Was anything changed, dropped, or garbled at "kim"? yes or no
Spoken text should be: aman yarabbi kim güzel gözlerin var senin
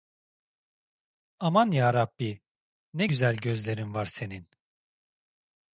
yes